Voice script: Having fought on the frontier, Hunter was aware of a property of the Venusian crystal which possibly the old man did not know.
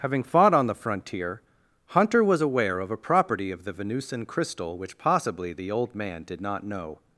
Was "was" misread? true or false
false